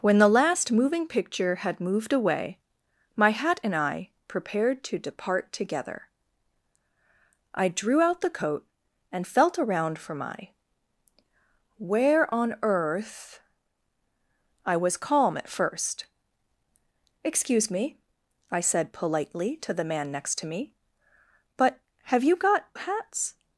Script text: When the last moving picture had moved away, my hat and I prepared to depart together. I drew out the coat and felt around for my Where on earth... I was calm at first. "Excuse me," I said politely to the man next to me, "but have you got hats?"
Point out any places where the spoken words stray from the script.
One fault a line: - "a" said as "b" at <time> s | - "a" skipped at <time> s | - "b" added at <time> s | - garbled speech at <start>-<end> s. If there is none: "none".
none